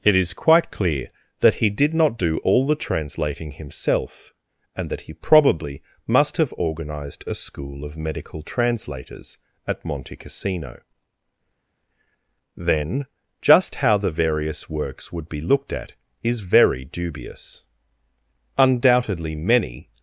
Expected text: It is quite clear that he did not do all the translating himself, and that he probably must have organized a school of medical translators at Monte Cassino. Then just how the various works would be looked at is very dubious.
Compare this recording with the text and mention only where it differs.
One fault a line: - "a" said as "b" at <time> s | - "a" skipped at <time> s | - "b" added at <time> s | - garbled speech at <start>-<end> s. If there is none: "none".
- "Undoubtedly many" added at 18.6 s